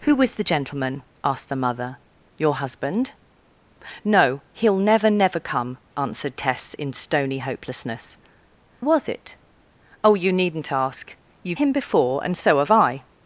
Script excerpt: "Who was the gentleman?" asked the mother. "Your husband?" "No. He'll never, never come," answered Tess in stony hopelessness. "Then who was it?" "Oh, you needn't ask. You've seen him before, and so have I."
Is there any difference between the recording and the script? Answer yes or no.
yes